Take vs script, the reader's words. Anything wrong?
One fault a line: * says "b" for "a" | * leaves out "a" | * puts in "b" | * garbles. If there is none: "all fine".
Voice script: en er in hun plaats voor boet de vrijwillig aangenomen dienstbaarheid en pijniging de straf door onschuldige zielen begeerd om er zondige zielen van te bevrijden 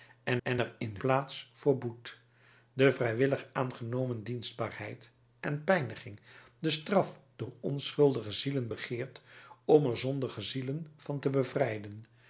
* puts in "en"
* leaves out "hun"